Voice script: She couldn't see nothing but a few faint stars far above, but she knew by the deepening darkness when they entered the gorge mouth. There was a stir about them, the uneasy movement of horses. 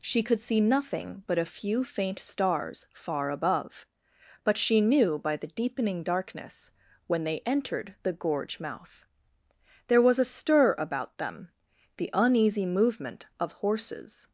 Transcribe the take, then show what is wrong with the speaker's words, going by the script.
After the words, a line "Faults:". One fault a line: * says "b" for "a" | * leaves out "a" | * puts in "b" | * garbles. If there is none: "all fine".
She could see nothing but a few faint stars far above, but she knew by the deepening darkness when they entered the gorge mouth. There was a stir about them, the uneasy movement of horses.
Faults:
* says "could" for "couldn't"